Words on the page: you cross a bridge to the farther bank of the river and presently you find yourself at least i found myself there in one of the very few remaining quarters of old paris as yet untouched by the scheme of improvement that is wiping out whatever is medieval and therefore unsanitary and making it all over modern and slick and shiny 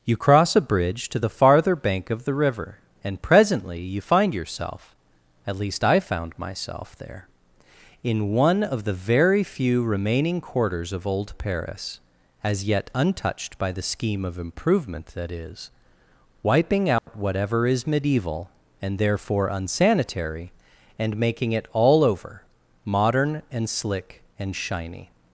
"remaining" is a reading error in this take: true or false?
false